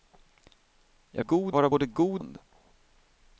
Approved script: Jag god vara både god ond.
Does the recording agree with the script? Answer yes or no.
yes